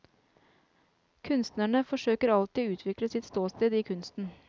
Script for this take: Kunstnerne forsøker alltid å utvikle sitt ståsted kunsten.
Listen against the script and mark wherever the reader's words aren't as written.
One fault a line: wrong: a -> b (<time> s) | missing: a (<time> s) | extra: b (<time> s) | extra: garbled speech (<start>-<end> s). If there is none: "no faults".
extra: i (3.7 s)